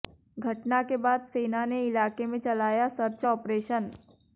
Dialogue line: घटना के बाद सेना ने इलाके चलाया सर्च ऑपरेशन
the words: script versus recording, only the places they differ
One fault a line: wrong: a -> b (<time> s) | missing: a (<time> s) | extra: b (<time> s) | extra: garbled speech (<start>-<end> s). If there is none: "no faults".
extra: में (2.2 s)